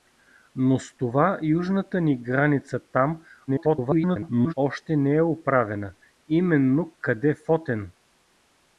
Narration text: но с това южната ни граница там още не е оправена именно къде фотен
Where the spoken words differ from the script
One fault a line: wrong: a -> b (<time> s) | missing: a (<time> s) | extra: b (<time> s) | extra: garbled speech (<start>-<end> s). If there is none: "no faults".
extra: garbled speech (3.5-4.5 s)